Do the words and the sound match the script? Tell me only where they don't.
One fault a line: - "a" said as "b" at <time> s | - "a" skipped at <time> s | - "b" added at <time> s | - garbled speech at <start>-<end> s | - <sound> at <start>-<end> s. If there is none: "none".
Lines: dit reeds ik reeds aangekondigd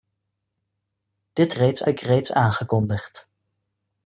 none